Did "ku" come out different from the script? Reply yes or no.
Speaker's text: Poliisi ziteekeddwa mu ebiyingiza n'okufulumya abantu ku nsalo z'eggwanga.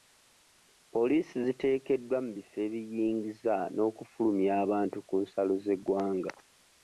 no